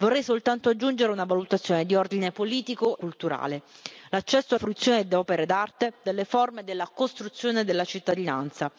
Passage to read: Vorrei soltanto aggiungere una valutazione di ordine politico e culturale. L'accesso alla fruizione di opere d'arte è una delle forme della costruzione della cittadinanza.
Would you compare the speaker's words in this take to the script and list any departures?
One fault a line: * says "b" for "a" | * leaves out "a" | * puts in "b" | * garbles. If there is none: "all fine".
* leaves out "e"
* leaves out "alla"
* leaves out "è una"